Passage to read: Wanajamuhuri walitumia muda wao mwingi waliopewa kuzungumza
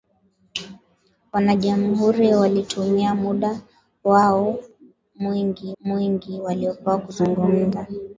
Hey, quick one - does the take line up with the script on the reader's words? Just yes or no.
no